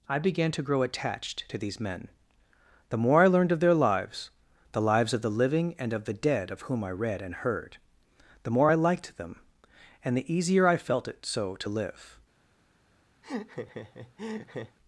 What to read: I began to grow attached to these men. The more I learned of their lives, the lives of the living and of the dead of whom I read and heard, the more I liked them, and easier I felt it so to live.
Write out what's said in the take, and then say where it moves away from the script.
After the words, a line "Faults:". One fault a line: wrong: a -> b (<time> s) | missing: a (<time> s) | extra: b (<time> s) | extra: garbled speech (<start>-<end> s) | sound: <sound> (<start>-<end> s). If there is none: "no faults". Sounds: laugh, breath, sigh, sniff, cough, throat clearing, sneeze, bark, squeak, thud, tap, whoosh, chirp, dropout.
I began to grow attached to these men. The more I learned of their lives, the lives of the living and of the dead of whom I read and heard, the more I liked them, and the easier I felt it so to live.
Faults:
extra: the (10.2 s)
sound: laugh (13.2-14.8 s)